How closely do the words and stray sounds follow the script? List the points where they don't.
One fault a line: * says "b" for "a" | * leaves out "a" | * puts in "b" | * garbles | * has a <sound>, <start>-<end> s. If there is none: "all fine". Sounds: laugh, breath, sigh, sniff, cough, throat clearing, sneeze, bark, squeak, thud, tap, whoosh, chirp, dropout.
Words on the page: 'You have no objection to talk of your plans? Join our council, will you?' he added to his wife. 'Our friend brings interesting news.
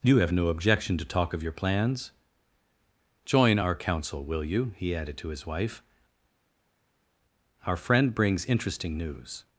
all fine